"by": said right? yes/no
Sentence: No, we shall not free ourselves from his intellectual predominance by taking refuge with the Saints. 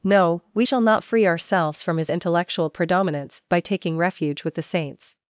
yes